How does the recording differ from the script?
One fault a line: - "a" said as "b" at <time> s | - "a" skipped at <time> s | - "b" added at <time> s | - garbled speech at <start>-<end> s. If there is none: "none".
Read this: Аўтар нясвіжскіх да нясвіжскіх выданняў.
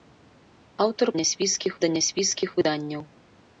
none